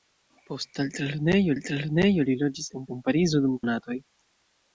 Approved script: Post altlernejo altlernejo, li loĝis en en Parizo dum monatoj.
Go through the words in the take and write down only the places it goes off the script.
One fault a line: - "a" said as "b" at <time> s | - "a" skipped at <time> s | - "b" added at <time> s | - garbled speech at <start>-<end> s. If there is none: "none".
none